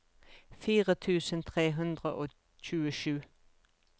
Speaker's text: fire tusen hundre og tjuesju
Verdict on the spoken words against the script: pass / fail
fail